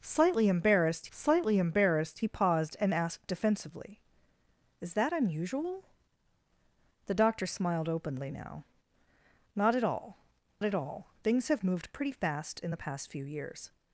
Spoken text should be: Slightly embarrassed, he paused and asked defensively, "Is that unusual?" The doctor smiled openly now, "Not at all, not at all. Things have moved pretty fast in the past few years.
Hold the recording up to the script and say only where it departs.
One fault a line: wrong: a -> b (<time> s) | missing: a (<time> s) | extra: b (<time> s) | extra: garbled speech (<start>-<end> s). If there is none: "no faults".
extra: slightly embarrassed (1.1 s)
missing: not (10.2 s)